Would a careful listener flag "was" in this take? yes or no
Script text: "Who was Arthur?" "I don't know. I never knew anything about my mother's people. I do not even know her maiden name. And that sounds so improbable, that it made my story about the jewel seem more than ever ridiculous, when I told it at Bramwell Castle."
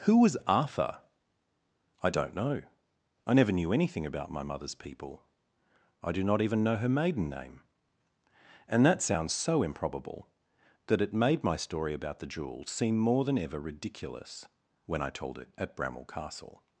no